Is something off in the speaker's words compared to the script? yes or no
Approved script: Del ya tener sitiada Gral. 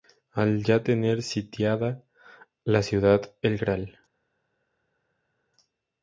yes